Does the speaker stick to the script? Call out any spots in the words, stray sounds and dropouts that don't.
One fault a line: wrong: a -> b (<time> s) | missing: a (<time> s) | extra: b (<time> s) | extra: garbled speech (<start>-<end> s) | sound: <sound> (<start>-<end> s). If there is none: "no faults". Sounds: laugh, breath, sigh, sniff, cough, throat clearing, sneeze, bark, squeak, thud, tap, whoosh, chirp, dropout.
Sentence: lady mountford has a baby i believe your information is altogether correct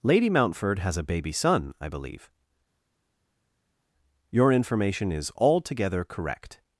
extra: son (1.3 s)